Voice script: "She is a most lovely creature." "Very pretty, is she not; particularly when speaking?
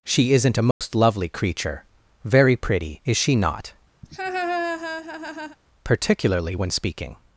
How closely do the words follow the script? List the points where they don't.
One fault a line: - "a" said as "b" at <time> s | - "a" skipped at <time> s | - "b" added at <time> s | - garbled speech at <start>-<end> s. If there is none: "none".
- "is" said as "isn't" at 0.3 s